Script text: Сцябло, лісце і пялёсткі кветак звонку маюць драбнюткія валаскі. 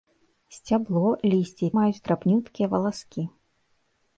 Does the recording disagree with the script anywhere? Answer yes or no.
yes